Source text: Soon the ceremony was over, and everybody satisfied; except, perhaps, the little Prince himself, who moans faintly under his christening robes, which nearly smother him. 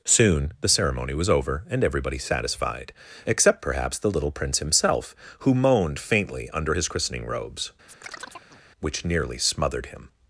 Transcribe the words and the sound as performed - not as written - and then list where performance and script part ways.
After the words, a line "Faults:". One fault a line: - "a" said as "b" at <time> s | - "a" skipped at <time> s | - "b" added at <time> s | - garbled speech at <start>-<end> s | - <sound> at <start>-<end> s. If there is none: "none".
Soon the ceremony was over, and everybody satisfied; except, perhaps, the little Prince himself, who moaned faintly under his christening robes, which nearly smothered him.
Faults:
- "moans" said as "moaned" at 5.5 s
- chirp at 7.9-8.6 s
- "smother" said as "smothered" at 9.4 s